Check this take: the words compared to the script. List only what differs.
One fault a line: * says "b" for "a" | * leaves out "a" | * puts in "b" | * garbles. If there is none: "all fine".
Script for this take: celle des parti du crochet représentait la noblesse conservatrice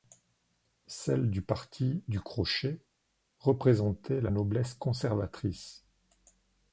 * says "du" for "des"